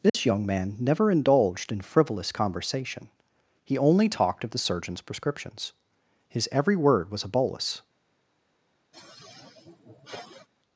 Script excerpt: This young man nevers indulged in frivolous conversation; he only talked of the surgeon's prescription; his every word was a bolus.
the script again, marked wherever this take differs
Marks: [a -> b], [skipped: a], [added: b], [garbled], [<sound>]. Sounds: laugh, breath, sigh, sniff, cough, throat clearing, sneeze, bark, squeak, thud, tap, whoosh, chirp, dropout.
This [dropout] young man [nevers -> never] indulged in frivolous conversation; he only talked of the surgeon's [prescription; -> prescriptions] his every word was a bolus. [sigh]